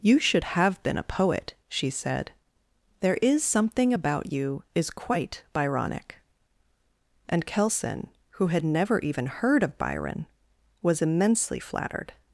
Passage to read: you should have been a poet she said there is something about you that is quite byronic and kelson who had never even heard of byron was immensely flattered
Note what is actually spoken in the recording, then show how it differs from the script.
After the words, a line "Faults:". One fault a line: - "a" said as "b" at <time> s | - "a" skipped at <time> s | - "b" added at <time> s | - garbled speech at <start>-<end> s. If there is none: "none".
you should have been a poet she said there is something about you is quite byronic and kelson who had never even heard of byron was immensely flattered
Faults:
- "that" skipped at 4.6 s